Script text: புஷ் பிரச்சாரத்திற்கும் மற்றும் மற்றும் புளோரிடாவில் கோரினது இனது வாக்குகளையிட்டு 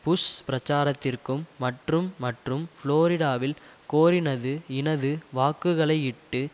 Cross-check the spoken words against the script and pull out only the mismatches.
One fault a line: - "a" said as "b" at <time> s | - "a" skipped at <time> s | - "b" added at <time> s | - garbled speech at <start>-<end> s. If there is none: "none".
none